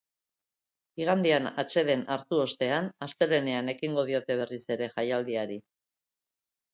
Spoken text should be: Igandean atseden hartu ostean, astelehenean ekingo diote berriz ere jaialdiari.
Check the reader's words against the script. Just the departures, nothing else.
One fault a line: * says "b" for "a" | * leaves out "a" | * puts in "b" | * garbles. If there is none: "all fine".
all fine